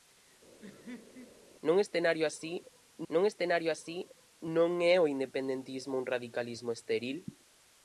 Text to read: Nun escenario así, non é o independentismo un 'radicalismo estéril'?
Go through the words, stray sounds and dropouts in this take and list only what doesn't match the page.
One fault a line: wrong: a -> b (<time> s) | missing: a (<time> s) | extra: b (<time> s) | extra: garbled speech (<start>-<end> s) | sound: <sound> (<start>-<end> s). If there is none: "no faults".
sound: laugh (0.6-1.4 s)
extra: nun escenario así (3.1 s)